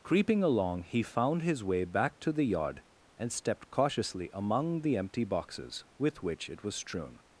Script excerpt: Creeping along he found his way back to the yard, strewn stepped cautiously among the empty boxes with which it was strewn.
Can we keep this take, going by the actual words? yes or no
no